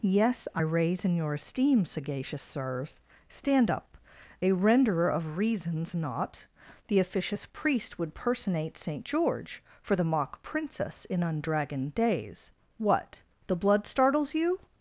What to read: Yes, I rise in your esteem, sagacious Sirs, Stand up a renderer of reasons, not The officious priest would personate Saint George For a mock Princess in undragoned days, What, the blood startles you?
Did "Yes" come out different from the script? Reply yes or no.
no